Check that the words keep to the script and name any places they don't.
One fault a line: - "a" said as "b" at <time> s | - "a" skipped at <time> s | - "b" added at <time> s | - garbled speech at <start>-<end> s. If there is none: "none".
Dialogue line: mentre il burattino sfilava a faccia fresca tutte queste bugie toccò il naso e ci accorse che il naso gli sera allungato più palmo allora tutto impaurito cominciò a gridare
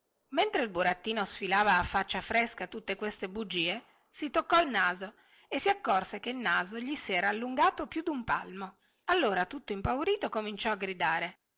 - "si" added at 4.1 s
- "ci" said as "si" at 5.5 s
- "dun" added at 8.0 s